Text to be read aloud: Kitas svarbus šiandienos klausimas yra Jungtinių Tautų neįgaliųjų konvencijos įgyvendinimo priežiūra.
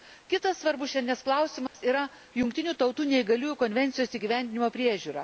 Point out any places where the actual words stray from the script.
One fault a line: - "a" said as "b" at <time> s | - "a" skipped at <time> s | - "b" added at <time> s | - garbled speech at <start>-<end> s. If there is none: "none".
none